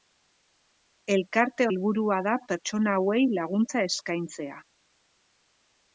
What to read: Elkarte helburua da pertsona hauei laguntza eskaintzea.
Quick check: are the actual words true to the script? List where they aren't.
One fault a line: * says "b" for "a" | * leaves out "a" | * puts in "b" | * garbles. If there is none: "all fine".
all fine